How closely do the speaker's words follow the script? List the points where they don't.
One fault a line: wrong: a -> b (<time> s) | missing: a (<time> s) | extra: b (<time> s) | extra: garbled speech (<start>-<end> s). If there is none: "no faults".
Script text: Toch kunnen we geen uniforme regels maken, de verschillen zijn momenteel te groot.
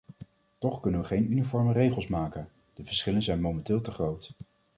no faults